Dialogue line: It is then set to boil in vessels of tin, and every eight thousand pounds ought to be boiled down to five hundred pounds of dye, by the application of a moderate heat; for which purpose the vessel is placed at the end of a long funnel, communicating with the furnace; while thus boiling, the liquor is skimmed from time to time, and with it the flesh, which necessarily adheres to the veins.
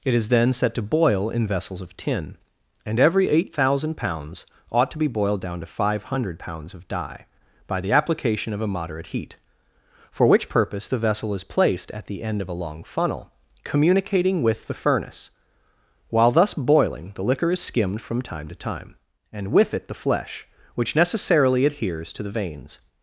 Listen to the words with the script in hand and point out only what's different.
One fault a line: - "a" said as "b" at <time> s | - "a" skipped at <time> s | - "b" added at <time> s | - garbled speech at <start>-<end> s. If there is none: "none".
none